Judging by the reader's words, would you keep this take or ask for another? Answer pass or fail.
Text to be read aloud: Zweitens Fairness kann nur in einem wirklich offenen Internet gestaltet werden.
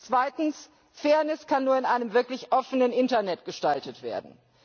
pass